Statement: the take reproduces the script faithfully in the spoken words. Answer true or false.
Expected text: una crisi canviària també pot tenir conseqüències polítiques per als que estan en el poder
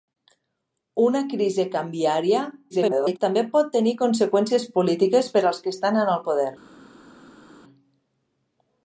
false